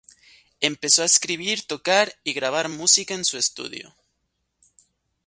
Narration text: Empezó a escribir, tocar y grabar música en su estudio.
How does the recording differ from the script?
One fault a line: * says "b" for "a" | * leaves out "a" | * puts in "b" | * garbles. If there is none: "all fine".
all fine